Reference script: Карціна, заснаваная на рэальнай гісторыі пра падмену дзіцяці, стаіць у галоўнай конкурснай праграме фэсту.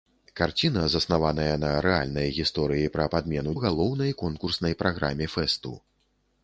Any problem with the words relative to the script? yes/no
yes